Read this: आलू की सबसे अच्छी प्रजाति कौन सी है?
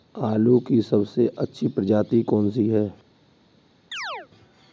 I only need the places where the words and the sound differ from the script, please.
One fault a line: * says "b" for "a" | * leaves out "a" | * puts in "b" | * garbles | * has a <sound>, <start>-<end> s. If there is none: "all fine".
* has a chirp, 3.9-4.3 s